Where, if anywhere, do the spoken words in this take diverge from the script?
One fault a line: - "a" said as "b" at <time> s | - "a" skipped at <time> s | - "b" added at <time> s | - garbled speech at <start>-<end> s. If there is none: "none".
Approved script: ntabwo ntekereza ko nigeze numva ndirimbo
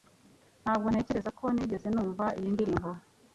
- "iyi" added at 2.4 s